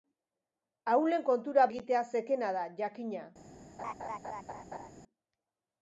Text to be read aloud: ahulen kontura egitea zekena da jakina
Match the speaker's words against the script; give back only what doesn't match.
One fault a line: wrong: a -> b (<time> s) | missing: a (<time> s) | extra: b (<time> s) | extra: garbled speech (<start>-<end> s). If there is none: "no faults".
no faults